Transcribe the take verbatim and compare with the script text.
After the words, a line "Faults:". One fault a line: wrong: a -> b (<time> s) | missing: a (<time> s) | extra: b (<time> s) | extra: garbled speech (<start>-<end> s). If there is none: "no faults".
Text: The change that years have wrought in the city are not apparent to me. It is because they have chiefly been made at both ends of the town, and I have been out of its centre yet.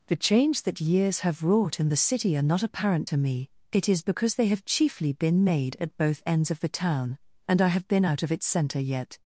The change that years have wrought in the city are not apparent to me. It is because they have chiefly been made at both ends of the town, and I have been out of its centre yet.
Faults:
no faults